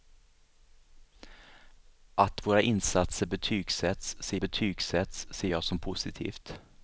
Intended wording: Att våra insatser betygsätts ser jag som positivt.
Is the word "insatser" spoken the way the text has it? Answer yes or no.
yes